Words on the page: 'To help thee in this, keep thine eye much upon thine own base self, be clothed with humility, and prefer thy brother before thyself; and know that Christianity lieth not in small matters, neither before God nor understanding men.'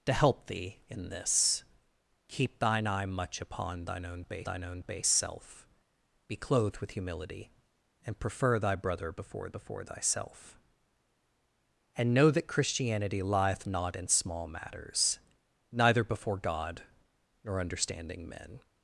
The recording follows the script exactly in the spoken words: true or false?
false